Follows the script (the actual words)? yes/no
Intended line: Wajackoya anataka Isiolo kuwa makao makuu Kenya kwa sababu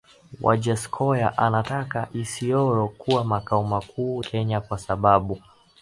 yes